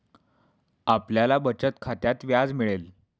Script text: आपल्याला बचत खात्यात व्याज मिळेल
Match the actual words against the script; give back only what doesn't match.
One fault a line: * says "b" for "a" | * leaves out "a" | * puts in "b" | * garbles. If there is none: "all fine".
all fine